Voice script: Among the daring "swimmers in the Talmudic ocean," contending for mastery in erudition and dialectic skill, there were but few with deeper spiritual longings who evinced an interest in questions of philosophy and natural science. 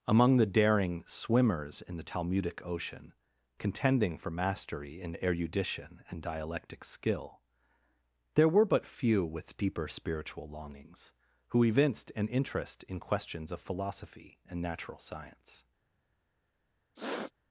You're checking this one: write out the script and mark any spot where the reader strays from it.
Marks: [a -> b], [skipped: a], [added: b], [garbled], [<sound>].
Among the daring "swimmers in the Talmudic ocean," contending for mastery in erudition and dialectic skill, there were but few with deeper spiritual longings who evinced an interest in questions of philosophy and natural science. [sniff]